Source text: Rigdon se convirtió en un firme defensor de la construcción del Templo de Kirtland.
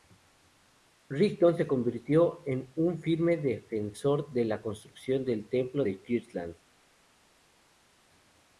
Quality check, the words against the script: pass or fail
pass